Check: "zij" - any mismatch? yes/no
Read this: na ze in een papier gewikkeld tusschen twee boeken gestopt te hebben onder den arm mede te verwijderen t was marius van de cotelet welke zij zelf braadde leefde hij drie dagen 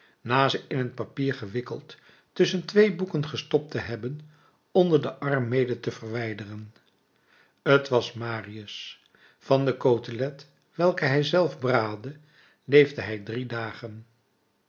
yes